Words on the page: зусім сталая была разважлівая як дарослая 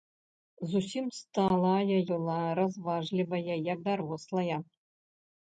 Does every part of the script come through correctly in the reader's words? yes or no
yes